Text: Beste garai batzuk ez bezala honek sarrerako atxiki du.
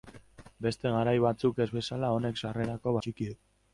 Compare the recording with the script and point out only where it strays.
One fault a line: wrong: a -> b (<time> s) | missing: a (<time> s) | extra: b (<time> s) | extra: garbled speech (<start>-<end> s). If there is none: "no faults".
no faults